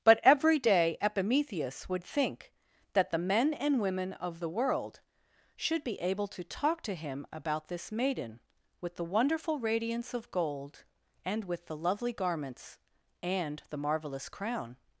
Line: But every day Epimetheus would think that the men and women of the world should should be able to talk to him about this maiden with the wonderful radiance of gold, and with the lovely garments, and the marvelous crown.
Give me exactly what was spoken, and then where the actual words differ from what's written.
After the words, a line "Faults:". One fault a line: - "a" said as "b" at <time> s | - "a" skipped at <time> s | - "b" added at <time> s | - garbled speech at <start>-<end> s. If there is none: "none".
But every day Epimetheus would think that the men and women of the world should be able to talk to him about this maiden with the wonderful radiance of gold, and with the lovely garments, and the marvelous crown.
Faults:
- "should" skipped at 5.8 s